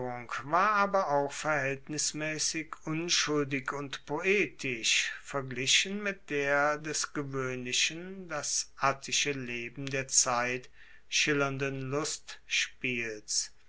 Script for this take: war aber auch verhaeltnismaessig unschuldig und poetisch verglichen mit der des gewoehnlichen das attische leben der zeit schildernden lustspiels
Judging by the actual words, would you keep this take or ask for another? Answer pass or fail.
pass